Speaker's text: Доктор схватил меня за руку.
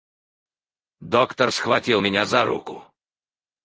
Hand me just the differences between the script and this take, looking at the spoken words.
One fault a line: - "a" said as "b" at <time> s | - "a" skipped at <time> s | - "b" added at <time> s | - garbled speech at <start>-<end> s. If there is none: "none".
none